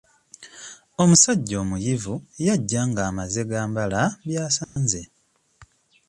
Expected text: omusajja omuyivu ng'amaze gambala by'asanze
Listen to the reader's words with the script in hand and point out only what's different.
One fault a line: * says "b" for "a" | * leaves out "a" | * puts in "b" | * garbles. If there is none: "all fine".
* puts in "yajja"